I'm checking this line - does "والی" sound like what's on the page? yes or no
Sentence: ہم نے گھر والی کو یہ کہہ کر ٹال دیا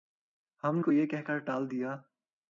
no